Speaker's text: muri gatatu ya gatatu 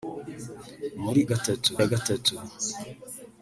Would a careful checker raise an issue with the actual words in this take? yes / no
no